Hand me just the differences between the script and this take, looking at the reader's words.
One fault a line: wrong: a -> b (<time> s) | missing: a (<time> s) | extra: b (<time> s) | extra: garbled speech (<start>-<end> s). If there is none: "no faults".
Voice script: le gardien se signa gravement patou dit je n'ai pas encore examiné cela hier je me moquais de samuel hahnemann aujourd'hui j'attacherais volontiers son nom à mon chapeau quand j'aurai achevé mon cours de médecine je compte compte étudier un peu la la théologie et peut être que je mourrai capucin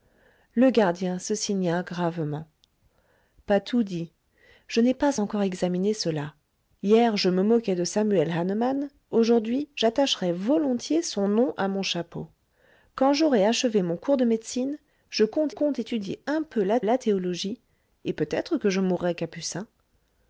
no faults